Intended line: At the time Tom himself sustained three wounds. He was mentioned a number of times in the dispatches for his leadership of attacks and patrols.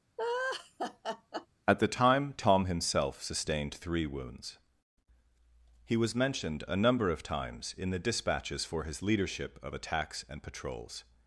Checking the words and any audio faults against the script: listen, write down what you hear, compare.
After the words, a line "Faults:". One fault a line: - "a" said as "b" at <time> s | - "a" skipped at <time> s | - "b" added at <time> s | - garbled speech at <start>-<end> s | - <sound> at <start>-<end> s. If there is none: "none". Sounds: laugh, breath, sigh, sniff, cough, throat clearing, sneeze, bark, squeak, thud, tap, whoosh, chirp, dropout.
At the time Tom himself sustained three wounds. He was mentioned a number of times in the dispatches for his leadership of attacks and patrols.
Faults:
- laugh at 0.2-1.5 s